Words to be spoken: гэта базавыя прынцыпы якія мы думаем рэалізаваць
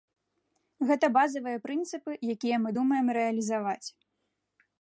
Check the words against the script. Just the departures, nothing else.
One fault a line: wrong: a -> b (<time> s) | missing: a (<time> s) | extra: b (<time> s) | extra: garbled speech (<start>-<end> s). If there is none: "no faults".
no faults